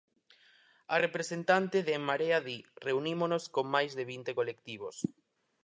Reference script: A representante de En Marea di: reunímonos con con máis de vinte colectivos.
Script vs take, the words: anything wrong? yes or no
yes